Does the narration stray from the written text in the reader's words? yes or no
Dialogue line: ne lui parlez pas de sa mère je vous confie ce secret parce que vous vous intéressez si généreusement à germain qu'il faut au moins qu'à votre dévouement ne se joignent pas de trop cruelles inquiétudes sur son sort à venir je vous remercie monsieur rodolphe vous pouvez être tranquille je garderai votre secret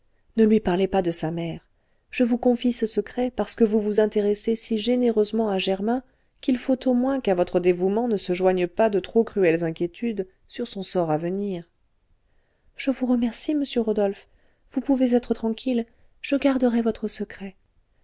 no